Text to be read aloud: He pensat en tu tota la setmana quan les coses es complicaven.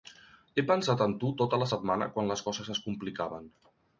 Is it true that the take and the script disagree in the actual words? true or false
false